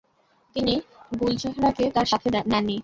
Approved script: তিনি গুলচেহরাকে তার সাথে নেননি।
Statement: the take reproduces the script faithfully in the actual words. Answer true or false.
true